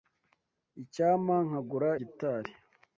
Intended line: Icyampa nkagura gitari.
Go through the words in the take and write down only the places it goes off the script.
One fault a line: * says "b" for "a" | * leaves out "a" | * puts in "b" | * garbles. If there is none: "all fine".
all fine